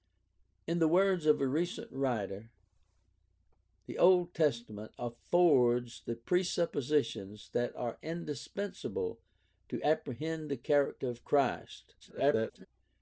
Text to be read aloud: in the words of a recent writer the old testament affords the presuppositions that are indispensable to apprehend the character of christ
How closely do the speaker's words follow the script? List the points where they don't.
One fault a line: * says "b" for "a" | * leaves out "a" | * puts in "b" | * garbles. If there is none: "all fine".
* garbles